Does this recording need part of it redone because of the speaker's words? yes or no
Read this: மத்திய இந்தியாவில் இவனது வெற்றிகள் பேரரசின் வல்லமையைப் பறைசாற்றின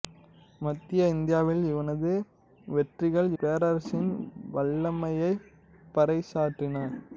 no